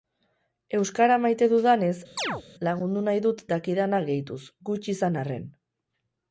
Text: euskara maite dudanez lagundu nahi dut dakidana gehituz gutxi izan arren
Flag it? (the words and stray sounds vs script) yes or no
yes